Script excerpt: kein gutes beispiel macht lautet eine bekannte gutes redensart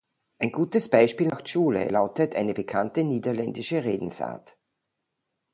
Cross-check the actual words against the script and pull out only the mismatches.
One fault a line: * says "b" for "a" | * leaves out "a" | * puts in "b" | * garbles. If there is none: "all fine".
* says "ein" for "kein"
* puts in "schule"
* says "niederländische" for "gutes"